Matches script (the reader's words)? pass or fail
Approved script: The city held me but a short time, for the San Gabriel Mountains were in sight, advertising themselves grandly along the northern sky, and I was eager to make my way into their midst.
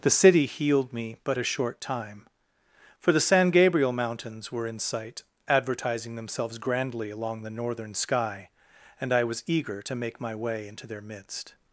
fail